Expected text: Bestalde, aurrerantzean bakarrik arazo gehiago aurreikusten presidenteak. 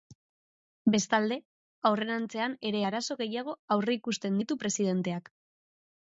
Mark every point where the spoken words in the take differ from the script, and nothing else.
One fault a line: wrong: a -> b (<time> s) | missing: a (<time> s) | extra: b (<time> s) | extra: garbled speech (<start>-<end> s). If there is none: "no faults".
wrong: bakarrik -> ere (2.7 s)
extra: ditu (4.4 s)